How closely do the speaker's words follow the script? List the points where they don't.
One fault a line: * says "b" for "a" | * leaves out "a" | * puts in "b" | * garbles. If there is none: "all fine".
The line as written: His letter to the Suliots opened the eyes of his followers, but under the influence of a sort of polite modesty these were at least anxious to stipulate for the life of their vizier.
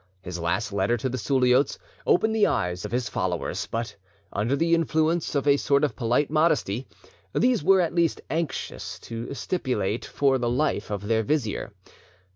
* puts in "last"